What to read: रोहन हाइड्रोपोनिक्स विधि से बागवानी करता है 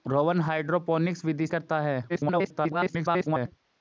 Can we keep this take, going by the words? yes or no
no